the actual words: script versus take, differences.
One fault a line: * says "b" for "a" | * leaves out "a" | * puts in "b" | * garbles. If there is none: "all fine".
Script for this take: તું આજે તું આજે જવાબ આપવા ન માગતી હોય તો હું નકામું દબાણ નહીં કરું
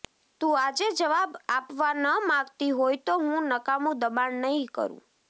* leaves out "તું આજે"